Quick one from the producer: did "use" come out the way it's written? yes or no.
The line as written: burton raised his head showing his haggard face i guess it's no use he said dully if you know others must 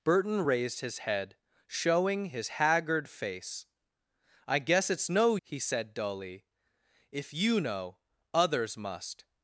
no